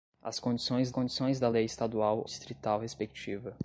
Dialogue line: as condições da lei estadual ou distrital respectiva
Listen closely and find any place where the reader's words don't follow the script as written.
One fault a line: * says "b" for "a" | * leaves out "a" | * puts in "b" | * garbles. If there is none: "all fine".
* puts in "condições"
* leaves out "ou"